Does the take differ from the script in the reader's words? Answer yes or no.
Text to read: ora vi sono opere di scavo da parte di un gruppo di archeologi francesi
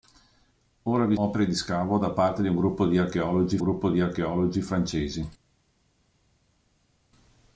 yes